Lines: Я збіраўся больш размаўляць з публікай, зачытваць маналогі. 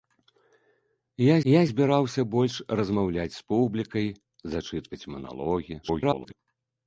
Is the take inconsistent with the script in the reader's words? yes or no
yes